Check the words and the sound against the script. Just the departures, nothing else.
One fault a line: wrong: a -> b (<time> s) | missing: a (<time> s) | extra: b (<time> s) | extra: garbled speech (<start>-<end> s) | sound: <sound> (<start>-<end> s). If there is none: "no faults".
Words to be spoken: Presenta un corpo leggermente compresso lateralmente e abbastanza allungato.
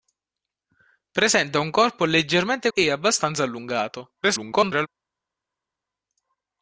missing: compresso lateralmente (2.7 s)
extra: garbled speech (4.2-4.9 s)